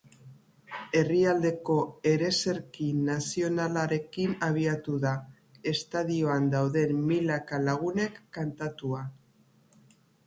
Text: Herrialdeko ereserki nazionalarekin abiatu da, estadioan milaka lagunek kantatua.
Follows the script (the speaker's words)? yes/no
no